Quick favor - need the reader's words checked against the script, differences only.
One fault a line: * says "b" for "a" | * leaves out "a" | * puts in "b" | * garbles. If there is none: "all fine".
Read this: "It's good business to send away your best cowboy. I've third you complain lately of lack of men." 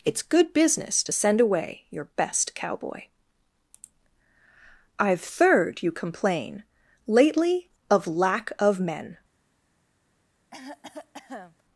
all fine